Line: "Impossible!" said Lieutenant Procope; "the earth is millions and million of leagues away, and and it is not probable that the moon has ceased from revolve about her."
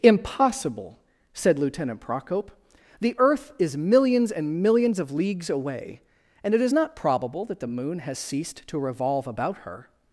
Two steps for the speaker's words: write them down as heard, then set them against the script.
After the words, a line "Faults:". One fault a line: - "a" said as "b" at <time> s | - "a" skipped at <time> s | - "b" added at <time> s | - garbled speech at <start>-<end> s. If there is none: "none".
"Impossible!" said Lieutenant Procope; "the earth is millions and millions of leagues away, and it is not probable that the moon has ceased to revolve about her."
Faults:
- "million" said as "millions" at 4.6 s
- "and" skipped at 6.5 s
- "from" said as "to" at 8.7 s